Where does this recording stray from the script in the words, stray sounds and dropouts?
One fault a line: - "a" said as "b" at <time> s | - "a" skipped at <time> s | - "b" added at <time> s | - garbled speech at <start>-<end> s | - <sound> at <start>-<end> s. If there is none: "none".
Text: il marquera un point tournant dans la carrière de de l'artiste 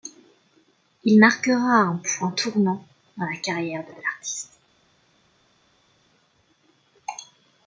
none